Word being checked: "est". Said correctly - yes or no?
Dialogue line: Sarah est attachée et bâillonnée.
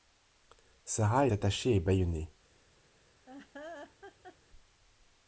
no